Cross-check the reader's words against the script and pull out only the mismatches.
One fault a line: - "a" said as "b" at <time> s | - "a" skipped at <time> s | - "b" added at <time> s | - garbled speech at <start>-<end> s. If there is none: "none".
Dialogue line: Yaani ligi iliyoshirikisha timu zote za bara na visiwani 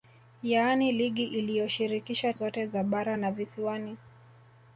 - "timu" skipped at 2.3 s